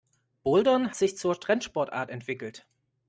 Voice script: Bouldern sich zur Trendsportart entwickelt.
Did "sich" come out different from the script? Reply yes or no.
no